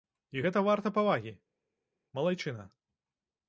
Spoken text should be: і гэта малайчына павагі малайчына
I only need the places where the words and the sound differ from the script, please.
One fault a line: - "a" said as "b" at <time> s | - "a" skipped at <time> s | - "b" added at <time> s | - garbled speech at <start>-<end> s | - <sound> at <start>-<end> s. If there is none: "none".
- "малайчына" said as "варта" at 0.7 s